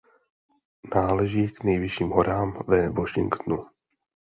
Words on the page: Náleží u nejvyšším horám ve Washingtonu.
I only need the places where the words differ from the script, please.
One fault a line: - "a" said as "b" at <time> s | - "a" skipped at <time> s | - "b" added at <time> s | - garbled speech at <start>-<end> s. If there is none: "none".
- "u" said as "k" at 1.5 s